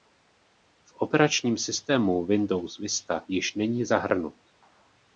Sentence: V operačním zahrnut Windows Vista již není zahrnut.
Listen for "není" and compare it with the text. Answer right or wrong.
right